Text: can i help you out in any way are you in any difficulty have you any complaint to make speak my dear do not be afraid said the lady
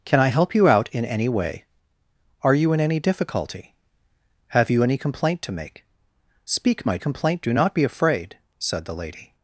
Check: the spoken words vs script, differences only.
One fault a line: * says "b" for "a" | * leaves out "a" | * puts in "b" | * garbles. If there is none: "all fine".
* says "complaint" for "dear"